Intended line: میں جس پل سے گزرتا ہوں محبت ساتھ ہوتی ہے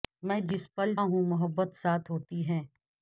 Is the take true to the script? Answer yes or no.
no